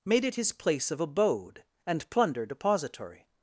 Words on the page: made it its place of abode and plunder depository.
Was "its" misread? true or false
true